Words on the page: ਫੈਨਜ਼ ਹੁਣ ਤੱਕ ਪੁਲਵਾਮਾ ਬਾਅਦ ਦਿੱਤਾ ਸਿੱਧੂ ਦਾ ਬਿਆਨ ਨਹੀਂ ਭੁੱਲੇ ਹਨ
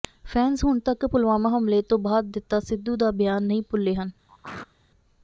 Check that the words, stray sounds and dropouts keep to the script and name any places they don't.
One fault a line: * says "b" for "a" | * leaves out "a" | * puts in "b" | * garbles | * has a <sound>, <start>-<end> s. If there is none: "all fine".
* puts in "ਹਮਲੇ ਤੋਂ"
* has a throat clearing, 4.3-4.7 s